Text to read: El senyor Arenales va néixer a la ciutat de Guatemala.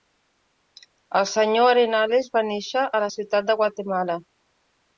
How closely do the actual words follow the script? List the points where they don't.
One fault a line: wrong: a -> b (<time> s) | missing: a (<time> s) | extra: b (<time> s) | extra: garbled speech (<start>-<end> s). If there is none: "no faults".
no faults